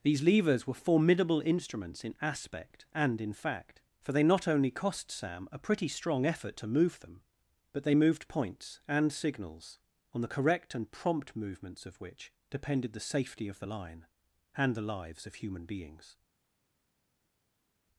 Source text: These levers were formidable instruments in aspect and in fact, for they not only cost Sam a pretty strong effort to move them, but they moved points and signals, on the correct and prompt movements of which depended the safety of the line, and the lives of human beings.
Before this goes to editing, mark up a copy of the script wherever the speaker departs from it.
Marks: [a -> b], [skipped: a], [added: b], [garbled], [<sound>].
These levers were formidable instruments in aspect and in fact, for they not only cost Sam a pretty strong effort to move them, but they moved points and signals, on the correct and prompt movements of which depended the safety of the line, and the lives of human beings.